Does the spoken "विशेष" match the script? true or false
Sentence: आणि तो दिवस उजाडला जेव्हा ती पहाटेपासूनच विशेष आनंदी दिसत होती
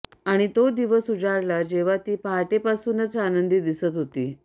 false